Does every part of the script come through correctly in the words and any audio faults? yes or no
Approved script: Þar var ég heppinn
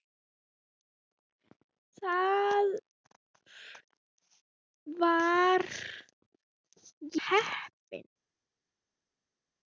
no